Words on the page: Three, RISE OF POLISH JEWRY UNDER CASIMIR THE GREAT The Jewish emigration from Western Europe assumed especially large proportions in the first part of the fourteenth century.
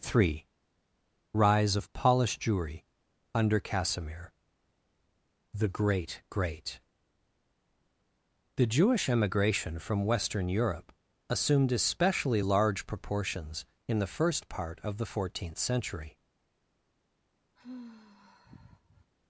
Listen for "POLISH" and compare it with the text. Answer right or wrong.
right